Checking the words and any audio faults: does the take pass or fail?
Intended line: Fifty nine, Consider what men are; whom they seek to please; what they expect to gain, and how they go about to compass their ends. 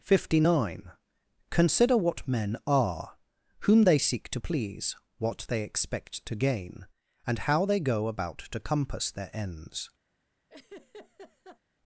fail